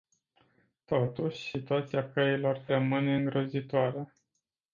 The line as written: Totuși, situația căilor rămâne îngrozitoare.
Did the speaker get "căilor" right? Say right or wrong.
right